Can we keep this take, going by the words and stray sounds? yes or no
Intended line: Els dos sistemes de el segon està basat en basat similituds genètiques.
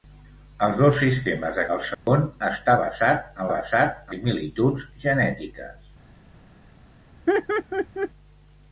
no